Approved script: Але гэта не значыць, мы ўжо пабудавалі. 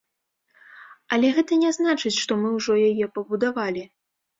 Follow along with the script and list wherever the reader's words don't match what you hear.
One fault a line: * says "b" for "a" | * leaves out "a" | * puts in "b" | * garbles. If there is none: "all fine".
* puts in "што"
* puts in "яе"